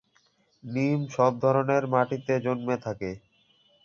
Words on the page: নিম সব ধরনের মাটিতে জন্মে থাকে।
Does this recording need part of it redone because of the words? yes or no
no